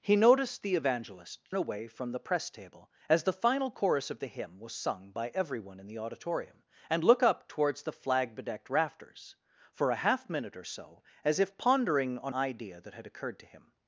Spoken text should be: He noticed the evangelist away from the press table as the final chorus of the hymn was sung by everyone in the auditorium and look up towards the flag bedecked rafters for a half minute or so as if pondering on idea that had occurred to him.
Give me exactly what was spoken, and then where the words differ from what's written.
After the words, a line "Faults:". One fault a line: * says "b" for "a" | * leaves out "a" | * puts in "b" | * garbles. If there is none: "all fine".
He noticed the evangelist away from the press table as the final chorus of the hymn was sung by everyone in the auditorium and look up towards the flag bedecked rafters for a half minute or so as if pondering on idea that had occurred to him.
Faults:
all fine